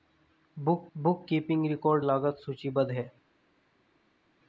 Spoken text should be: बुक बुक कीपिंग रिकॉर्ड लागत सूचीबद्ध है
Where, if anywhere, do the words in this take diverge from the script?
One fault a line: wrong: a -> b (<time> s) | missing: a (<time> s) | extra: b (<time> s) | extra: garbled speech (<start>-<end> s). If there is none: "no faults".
no faults